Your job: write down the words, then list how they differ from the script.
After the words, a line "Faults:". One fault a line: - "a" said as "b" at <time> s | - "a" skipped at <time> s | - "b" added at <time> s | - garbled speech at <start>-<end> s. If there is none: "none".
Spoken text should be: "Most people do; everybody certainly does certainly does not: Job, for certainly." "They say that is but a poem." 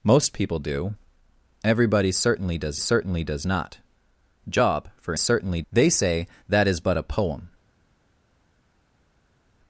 "Most people do; everybody certainly does certainly does not: Job, for certainly." "They say that is but a poem."
Faults:
none